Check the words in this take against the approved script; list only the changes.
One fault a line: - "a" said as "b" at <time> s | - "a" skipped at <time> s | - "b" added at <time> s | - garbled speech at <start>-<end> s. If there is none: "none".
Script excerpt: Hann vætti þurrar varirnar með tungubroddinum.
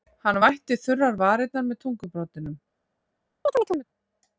none